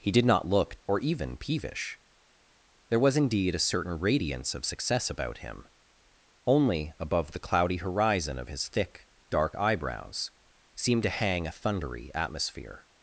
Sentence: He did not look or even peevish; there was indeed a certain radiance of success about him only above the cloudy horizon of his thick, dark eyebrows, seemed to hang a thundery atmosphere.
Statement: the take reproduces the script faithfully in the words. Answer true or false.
true